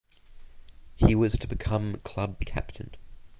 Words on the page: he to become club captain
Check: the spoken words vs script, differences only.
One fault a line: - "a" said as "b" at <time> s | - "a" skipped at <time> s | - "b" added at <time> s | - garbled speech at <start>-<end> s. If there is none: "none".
- "was" added at 1.1 s